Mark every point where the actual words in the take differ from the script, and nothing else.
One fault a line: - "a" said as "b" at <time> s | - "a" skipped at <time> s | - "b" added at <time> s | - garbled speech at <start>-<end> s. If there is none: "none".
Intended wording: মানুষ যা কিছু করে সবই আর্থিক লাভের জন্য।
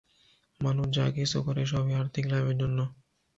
none